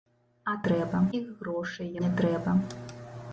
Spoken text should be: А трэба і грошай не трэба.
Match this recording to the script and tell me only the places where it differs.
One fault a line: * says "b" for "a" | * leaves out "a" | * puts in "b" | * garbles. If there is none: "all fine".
all fine